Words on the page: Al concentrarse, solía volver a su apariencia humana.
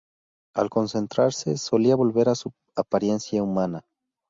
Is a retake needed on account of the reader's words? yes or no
no